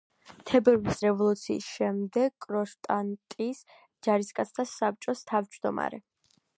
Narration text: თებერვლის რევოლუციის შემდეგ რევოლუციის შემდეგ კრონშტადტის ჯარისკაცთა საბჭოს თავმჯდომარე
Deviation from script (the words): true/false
true